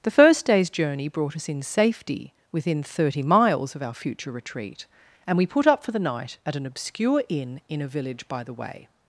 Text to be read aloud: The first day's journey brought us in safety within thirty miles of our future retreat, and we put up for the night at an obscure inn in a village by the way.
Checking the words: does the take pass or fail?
pass